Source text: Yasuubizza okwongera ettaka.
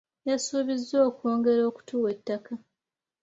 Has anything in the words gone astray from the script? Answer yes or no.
yes